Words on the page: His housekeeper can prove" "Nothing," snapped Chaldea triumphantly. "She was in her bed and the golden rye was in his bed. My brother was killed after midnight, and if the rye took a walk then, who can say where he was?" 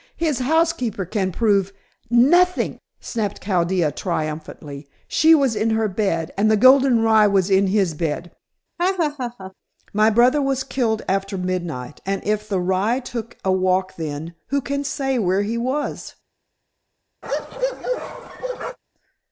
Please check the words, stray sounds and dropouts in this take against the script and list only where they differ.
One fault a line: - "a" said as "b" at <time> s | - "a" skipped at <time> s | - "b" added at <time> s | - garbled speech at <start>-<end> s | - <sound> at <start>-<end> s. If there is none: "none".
- laugh at 8.8-9.5 s
- bark at 17.2-18.8 s